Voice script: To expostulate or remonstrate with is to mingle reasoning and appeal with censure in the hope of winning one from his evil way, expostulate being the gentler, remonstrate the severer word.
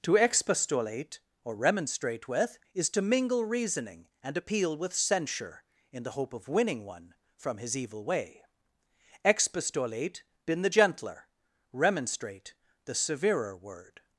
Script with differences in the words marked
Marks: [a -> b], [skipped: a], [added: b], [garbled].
To expostulate or remonstrate with is to mingle reasoning and appeal with censure in the hope of winning one from his evil way, expostulate [being -> been] the gentler, remonstrate the severer word.